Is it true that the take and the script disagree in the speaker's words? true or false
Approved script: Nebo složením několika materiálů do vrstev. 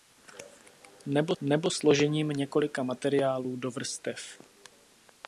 true